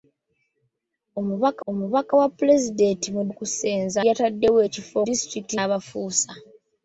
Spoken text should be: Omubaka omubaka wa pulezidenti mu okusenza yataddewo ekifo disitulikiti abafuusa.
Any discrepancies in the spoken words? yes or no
no